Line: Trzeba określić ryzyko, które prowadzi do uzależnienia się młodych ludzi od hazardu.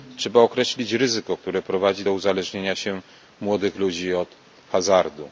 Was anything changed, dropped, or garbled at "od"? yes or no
no